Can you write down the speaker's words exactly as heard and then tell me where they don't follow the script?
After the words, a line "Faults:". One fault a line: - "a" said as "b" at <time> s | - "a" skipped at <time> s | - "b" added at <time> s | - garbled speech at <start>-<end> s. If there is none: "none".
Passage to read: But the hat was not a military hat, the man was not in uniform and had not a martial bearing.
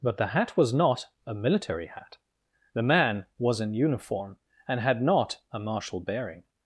But the hat was not a military hat, the man was in uniform and had not a martial bearing.
Faults:
- "not" skipped at 3.6 s